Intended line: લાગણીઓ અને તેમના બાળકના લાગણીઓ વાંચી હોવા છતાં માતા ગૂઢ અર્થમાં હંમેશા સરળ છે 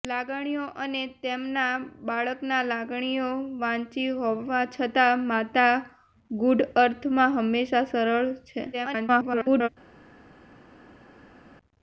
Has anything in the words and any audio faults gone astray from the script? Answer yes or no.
yes